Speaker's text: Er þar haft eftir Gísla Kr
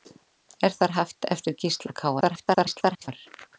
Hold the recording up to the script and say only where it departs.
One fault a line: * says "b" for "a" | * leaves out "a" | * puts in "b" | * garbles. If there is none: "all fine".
* garbles